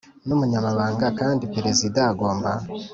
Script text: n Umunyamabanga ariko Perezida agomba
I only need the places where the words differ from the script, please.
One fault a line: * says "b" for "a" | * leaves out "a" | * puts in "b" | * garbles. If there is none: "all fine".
* says "kandi" for "ariko"